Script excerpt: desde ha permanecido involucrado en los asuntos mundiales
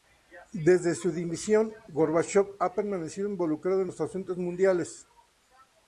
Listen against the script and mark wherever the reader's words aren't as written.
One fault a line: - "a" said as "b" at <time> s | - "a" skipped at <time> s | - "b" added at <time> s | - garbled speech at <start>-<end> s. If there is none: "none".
- "su dimisión gorbachov" added at 0.9 s